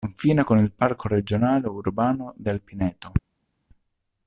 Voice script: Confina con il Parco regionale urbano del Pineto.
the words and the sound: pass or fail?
pass